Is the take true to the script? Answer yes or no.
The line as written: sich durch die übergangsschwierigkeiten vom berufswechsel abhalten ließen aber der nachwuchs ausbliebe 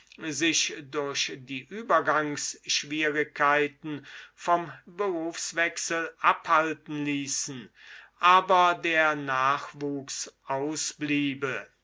yes